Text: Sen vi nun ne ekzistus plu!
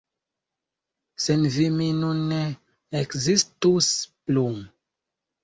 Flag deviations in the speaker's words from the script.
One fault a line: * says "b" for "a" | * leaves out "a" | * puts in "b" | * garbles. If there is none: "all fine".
* puts in "mi"